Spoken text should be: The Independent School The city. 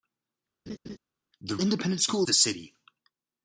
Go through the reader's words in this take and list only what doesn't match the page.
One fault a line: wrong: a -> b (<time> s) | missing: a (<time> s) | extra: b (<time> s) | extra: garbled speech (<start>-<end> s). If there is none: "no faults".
no faults